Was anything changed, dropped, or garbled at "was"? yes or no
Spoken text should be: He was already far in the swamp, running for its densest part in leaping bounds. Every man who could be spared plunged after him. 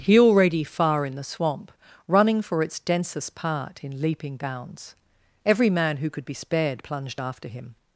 yes